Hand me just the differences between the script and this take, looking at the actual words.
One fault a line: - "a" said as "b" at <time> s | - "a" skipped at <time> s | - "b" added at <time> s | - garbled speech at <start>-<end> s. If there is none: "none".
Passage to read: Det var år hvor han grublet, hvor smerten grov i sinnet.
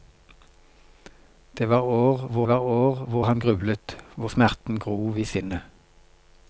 - "var år hvor" added at 2.5 s